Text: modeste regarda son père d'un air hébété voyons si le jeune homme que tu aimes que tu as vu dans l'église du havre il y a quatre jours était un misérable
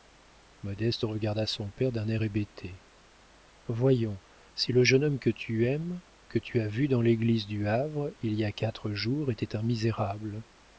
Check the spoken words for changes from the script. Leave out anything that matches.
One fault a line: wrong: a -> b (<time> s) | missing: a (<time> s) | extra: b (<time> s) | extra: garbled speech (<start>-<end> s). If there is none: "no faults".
no faults